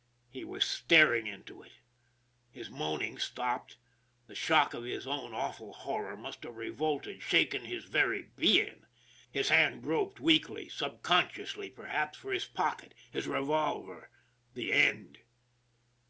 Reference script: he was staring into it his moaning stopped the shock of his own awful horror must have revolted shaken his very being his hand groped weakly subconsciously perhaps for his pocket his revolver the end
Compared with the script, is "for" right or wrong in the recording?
right